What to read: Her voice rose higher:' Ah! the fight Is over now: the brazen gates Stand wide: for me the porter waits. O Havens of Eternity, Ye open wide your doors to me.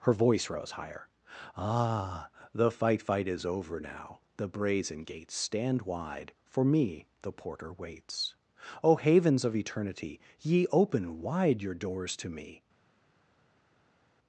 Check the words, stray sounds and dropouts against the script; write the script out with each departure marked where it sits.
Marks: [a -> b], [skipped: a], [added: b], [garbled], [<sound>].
Her voice rose higher:' Ah! the fight [added: fight] Is over now: the brazen gates Stand wide: for me the porter waits. O Havens of Eternity, Ye open wide your doors to me.